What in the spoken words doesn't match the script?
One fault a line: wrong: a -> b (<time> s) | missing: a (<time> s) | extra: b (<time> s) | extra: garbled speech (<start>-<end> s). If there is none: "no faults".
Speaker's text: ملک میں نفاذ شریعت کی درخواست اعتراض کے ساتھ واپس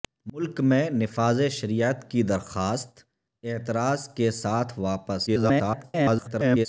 extra: garbled speech (5.3-6.7 s)